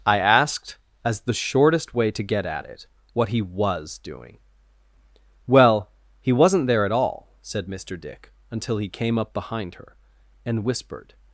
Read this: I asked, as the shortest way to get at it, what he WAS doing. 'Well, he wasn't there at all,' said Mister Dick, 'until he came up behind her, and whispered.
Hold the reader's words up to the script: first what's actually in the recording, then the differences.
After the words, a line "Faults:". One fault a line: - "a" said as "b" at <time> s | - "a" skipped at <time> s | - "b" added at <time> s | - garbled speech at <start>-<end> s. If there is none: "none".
I asked, as the shortest way to get at it, what he WAS doing. 'Well, he wasn't there at all,' said Mister Dick, 'until he came up behind her, and whispered.
Faults:
none